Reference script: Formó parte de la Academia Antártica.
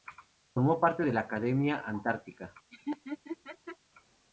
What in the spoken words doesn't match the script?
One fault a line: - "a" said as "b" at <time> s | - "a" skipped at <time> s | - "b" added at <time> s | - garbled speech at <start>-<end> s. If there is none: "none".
none